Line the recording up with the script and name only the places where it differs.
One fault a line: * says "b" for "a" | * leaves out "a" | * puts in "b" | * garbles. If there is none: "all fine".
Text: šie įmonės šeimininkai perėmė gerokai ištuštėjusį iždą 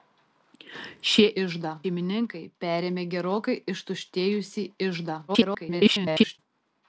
* says "iždą" for "įmonės"
* garbles